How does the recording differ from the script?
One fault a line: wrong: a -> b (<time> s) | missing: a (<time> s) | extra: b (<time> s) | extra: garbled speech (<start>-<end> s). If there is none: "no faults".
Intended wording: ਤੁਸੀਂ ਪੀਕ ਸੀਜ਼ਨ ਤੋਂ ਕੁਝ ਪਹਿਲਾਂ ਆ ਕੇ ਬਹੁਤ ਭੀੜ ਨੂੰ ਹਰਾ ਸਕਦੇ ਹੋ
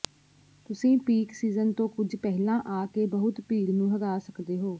no faults